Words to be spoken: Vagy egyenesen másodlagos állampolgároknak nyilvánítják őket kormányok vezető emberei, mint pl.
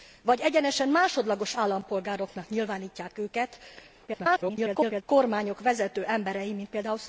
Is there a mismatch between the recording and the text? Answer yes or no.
yes